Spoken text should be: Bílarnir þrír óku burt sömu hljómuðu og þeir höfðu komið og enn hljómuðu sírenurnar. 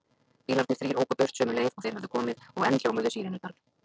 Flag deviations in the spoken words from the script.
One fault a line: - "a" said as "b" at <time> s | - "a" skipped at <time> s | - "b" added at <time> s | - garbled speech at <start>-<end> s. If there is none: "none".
- "hljómuðu" said as "leið" at 1.6 s